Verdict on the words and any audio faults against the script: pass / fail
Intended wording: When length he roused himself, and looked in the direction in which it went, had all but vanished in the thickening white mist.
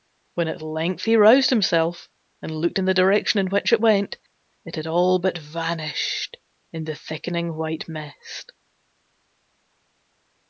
fail